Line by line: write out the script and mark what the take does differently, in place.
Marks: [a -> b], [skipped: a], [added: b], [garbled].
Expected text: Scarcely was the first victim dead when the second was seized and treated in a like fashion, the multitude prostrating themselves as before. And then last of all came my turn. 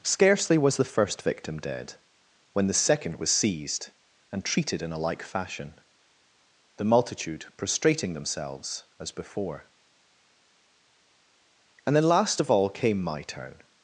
Scarcely was the first victim dead when the second was seized and treated in a like fashion, the multitude prostrating themselves as before. And then last of all came my turn.